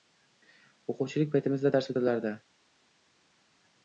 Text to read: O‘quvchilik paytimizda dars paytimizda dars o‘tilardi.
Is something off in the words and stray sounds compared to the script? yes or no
yes